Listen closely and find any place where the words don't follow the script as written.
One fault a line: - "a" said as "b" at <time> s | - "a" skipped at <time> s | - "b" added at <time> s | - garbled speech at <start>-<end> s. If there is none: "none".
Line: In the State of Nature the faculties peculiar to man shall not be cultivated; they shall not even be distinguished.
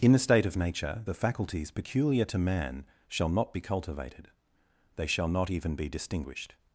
none